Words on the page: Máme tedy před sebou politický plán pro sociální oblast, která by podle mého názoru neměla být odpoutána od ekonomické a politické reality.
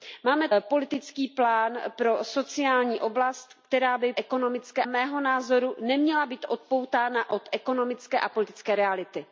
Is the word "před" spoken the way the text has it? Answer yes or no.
no